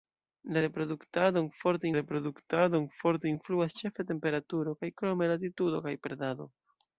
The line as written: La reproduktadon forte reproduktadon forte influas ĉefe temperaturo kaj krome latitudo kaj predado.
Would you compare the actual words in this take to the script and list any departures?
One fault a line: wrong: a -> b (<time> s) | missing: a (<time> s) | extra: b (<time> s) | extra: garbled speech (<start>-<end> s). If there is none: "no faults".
no faults